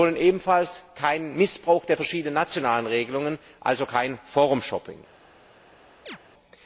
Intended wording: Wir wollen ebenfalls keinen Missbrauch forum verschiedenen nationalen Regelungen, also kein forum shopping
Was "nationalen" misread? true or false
false